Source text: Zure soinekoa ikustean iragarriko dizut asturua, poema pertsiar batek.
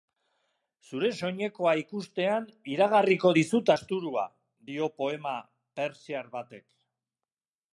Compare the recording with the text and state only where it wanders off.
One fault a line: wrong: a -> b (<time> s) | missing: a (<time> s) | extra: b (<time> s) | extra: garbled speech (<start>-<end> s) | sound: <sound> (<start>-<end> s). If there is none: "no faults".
extra: dio (4.7 s)